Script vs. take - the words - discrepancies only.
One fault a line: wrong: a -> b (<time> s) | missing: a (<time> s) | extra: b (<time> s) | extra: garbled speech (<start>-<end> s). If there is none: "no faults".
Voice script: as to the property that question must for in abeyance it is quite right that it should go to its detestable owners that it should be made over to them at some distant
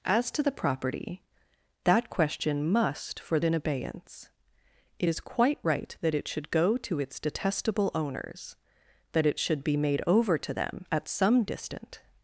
no faults